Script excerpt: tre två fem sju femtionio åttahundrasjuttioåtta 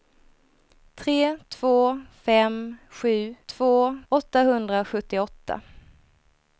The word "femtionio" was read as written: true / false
false